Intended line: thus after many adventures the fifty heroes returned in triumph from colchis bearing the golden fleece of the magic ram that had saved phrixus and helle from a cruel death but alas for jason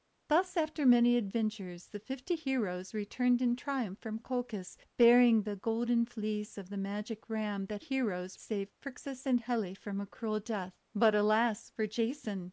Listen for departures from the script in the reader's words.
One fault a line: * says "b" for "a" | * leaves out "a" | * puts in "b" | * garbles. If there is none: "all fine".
* says "heroes" for "had"